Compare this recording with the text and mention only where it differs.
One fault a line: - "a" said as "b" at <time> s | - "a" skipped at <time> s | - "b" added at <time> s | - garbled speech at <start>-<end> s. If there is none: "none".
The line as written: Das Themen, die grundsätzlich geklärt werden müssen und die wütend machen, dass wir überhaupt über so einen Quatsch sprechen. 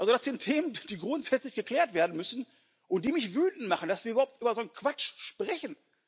- "sind" added at 0.2 s
- "mich" added at 3.1 s